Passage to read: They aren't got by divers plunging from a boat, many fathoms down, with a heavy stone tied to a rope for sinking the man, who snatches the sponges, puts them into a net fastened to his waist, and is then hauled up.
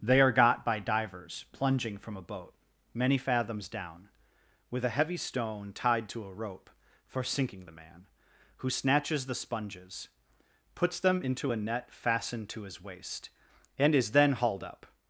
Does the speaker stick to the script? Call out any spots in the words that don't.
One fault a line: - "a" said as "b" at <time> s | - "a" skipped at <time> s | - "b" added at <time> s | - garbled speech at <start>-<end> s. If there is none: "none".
- "aren't" said as "are" at 0.2 s